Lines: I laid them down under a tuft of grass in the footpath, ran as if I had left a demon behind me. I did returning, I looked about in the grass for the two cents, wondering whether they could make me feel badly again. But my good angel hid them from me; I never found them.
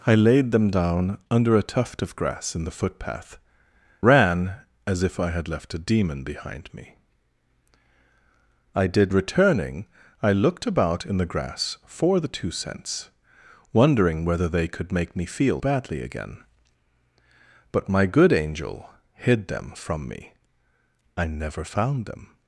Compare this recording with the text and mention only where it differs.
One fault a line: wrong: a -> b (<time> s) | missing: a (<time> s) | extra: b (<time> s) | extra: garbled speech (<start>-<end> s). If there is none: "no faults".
no faults